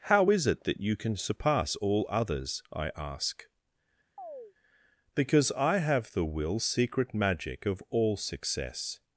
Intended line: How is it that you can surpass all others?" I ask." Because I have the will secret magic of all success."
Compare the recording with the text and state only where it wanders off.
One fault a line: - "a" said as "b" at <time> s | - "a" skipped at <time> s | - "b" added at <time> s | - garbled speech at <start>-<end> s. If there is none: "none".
none